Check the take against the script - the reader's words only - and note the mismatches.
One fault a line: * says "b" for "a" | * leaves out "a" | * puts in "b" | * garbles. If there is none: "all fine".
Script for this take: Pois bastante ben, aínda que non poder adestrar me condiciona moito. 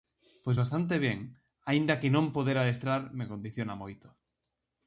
all fine